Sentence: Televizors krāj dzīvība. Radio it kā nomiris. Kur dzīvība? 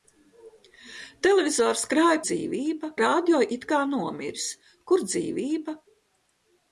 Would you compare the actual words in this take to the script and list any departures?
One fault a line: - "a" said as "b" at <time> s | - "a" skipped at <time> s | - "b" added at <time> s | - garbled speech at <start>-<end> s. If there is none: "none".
none